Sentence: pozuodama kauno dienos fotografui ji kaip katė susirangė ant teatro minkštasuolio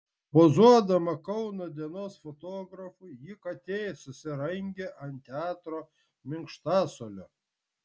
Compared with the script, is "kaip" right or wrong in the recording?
wrong